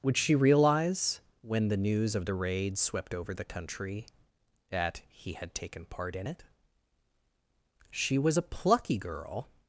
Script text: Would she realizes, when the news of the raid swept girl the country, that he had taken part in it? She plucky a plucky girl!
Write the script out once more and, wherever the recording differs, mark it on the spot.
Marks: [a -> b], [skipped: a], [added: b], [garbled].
Would she [realizes, -> realize] when the news of the raid swept [girl -> over] the country, that he had taken part in it? She [plucky -> was] a plucky girl!